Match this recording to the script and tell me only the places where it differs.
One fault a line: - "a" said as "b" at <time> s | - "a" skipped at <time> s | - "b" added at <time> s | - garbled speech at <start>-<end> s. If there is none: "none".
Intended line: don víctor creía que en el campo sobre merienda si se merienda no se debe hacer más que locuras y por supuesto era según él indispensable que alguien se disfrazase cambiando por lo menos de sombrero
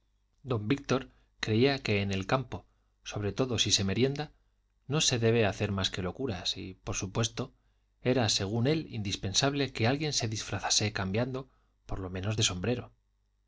- "merienda" said as "todo" at 3.3 s